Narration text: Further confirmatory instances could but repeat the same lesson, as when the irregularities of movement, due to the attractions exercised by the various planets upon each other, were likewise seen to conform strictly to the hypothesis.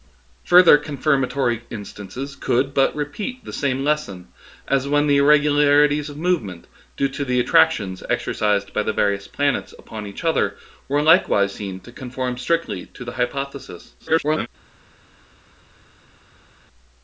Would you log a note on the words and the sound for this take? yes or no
yes